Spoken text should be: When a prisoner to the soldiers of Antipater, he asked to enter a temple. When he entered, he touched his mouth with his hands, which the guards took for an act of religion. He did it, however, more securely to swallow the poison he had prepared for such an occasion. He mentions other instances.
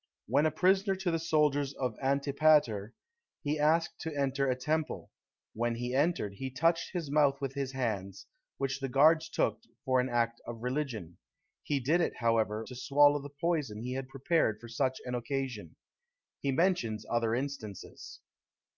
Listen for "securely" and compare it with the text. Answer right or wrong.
wrong